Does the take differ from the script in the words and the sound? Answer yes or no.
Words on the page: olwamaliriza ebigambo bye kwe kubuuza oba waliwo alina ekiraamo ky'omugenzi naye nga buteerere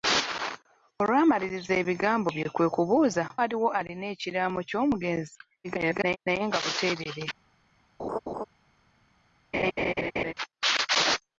yes